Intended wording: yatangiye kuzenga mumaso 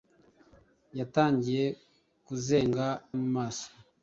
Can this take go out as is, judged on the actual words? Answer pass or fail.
pass